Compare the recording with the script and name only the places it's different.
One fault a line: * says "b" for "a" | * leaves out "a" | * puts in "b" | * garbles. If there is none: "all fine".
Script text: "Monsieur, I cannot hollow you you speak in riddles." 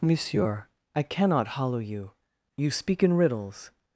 all fine